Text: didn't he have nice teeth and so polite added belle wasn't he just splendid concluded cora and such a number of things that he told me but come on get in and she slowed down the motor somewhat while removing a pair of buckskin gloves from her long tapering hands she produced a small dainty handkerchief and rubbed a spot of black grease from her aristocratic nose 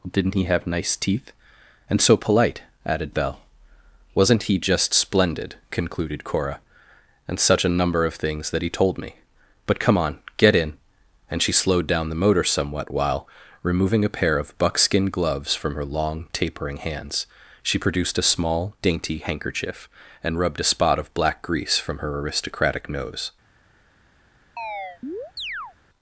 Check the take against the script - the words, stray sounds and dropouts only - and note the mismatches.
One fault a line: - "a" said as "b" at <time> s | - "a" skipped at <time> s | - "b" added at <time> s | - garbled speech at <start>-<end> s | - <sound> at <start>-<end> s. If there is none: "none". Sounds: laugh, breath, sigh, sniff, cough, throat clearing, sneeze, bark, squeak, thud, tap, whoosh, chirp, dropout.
- chirp at 24.6-25.7 s